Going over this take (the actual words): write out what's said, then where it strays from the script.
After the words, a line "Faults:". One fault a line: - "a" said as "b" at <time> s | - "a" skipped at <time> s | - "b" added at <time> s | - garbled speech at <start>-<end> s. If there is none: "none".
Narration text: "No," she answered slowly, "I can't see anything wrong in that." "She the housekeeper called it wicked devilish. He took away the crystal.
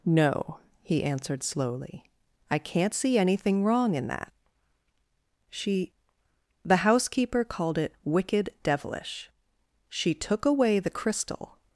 "No," he answered slowly, "I can't see anything wrong in that." "She the housekeeper called it wicked devilish. She took away the crystal.
Faults:
- "she" said as "he" at 0.8 s
- "He" said as "She" at 9.9 s